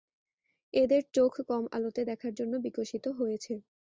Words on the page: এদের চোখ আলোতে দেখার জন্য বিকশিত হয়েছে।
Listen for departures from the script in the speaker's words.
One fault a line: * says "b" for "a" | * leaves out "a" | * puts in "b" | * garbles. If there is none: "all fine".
* puts in "কম"